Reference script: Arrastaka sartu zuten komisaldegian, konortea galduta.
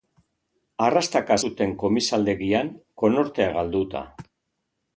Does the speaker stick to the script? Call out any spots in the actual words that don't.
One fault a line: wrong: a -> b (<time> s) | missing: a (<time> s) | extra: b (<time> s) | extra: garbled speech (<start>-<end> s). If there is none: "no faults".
missing: sartu (1.4 s)